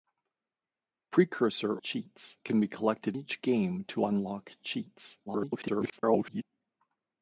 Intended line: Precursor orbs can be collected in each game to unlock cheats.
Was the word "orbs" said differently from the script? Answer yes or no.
yes